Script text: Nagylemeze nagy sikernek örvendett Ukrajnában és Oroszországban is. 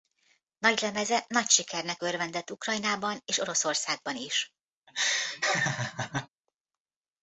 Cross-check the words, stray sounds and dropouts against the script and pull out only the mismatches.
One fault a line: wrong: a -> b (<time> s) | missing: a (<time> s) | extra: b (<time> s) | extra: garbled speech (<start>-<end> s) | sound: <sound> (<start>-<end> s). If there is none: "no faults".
sound: laugh (4.9-6.3 s)